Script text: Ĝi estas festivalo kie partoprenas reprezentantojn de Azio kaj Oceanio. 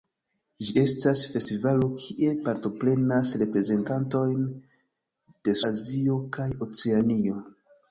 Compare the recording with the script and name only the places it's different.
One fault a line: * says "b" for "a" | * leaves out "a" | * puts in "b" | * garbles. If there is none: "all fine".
all fine